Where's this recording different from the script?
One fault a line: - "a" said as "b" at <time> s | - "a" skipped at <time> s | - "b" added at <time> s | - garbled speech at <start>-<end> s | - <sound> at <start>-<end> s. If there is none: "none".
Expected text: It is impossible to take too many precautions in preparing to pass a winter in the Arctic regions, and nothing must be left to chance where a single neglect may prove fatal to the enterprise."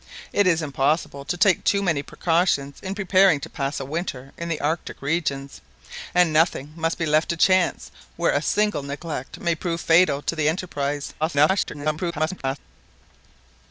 - garbled speech at 11.2-12.6 s